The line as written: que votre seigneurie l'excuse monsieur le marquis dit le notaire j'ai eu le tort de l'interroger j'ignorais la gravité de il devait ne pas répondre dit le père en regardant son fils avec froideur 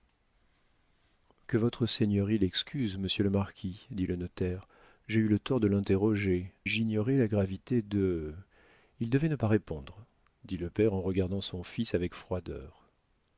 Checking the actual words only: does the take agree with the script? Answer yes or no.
yes